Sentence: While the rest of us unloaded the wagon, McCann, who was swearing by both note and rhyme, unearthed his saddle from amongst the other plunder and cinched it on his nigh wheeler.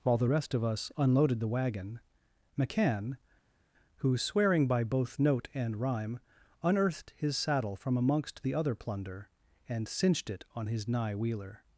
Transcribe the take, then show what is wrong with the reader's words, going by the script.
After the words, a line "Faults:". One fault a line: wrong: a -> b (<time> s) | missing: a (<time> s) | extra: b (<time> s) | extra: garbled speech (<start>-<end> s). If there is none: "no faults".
While the rest of us unloaded the wagon, McCann, who swearing by both note and rhyme, unearthed his saddle from amongst the other plunder and cinched it on his nigh wheeler.
Faults:
missing: was (4.2 s)